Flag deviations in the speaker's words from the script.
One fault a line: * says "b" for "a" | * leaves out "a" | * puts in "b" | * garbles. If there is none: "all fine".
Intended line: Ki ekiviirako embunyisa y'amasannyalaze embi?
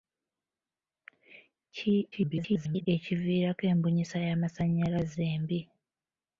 * garbles